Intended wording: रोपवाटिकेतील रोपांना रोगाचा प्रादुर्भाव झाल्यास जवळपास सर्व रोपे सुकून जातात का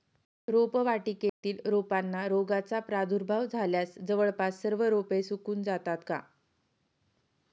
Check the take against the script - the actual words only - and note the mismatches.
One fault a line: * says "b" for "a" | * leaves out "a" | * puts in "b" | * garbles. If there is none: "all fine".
all fine